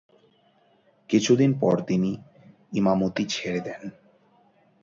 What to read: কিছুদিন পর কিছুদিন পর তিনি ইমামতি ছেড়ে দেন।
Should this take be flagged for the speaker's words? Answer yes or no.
yes